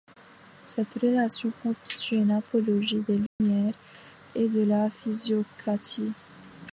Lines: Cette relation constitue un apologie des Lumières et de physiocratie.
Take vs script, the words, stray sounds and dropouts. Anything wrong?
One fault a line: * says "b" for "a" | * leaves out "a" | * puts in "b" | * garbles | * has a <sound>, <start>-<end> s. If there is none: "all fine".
* says "une" for "un"
* has a dropout, 3.3-3.4 s
* puts in "la"